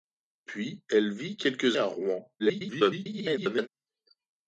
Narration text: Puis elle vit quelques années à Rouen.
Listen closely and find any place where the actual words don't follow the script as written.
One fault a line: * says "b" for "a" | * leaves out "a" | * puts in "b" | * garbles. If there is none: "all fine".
* leaves out "années"
* garbles